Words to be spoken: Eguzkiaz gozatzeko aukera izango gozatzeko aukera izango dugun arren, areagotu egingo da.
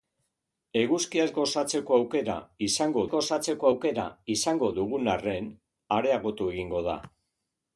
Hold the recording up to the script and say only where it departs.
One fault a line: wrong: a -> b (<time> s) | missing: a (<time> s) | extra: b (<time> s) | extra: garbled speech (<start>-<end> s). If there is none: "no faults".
no faults